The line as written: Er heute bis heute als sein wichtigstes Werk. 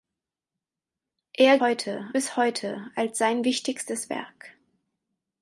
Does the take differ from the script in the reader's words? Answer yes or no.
no